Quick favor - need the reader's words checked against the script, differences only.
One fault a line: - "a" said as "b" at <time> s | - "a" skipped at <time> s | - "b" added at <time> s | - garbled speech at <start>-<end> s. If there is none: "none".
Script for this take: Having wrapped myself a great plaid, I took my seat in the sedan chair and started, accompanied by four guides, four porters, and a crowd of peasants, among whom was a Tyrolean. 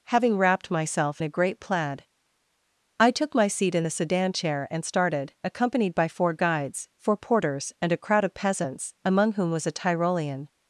none